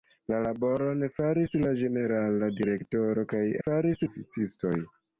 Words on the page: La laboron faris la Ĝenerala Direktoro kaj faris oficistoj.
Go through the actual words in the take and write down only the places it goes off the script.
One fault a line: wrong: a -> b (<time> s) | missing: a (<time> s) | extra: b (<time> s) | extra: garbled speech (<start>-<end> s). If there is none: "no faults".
no faults